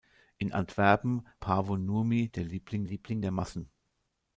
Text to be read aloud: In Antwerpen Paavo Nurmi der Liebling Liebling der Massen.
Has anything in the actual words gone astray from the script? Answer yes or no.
no